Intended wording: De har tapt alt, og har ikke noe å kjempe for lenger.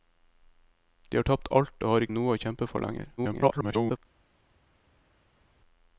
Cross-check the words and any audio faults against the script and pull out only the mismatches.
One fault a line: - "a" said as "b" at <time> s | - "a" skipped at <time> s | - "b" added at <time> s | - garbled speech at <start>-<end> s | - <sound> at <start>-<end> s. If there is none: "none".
- "ikke" skipped at 2.1 s
- garbled speech at 3.2-4.0 s